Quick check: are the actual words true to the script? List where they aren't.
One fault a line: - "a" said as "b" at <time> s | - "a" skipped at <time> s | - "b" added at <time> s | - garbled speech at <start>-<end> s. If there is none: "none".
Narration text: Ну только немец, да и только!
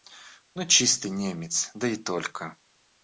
- "только" said as "чистый" at 0.7 s